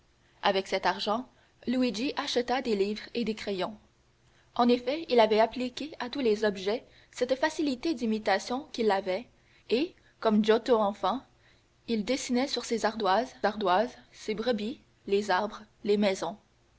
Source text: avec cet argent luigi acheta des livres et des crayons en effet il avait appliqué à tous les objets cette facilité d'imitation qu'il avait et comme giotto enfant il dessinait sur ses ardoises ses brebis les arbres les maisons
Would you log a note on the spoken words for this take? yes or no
yes